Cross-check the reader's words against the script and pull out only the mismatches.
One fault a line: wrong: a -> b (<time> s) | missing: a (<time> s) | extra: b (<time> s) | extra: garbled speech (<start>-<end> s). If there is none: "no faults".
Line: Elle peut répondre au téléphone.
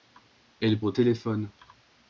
missing: peut répondre (0.8 s)